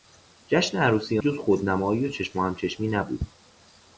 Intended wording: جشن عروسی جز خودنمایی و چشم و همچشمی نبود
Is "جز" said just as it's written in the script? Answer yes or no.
yes